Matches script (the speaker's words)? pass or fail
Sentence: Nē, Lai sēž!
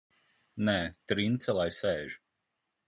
fail